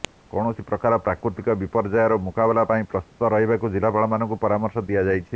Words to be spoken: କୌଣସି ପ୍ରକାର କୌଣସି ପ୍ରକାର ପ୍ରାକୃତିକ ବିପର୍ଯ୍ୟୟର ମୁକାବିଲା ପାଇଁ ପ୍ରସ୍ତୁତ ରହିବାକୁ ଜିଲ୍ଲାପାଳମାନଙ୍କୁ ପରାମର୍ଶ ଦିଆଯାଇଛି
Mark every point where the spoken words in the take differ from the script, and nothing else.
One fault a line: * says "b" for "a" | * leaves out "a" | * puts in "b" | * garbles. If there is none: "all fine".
* leaves out "କୌଣସି ପ୍ରକାର"